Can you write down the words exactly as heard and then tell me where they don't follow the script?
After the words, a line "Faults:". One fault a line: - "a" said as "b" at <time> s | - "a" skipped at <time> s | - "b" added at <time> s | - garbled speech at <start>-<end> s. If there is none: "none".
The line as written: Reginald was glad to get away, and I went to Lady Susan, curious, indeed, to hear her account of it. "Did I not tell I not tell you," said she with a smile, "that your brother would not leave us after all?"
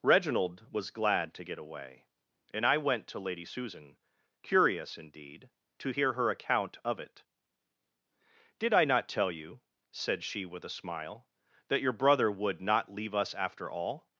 Reginald was glad to get away, and I went to Lady Susan, curious, indeed, to hear her account of it. "Did I not tell you," said she with a smile, "that your brother would not leave us after all?"
Faults:
- "I not tell" skipped at 9.3 s